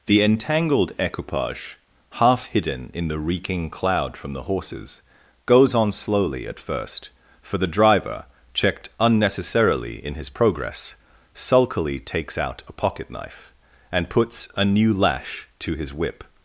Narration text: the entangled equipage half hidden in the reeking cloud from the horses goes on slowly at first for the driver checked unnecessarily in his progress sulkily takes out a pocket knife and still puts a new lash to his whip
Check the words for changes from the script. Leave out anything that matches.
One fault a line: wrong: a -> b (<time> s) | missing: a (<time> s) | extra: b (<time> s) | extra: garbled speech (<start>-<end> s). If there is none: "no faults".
missing: still (14.1 s)